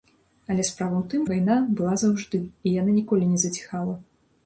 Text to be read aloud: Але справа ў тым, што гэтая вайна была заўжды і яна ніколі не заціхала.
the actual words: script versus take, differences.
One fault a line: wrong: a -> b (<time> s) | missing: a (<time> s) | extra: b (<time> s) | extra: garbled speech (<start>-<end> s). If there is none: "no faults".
missing: што гэтая (1.3 s)